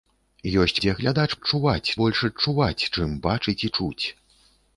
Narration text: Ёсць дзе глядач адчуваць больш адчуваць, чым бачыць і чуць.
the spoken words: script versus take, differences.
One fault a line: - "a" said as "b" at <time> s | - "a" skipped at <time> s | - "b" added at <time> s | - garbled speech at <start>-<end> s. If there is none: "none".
none